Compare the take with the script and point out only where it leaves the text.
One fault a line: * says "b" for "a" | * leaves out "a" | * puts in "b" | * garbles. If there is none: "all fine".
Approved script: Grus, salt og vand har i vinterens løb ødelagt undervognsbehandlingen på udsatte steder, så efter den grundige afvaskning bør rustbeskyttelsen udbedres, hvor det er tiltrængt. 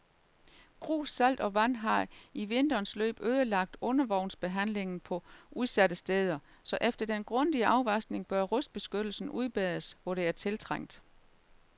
all fine